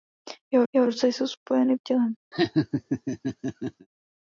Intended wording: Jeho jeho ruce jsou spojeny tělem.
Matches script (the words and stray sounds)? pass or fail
fail